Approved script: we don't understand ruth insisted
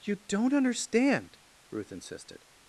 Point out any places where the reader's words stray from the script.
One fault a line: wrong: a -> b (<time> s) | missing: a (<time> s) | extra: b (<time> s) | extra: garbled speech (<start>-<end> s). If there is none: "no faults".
wrong: we -> you (0.0 s)